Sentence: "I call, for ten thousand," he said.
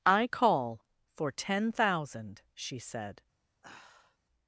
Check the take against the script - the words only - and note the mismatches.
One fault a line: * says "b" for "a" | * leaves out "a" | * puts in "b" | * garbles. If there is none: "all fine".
* says "she" for "he"